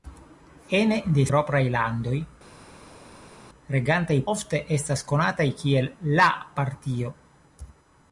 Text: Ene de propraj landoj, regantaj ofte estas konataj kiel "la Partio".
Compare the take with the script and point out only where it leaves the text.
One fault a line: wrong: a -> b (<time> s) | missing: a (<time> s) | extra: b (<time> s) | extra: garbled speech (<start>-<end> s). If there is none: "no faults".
no faults